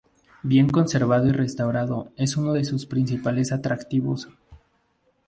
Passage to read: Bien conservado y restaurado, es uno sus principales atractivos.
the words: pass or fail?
fail